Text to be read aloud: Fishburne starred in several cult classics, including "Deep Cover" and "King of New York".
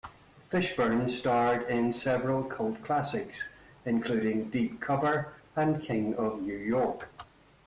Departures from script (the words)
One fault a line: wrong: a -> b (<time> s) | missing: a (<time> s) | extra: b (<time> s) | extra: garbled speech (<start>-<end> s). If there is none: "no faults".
no faults